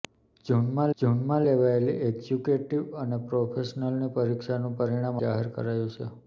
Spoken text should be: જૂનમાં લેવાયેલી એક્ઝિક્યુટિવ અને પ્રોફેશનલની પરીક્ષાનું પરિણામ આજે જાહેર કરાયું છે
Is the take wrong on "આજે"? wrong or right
wrong